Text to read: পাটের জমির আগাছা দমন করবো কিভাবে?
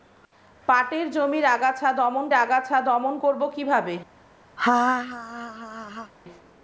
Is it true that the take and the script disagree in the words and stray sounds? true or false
true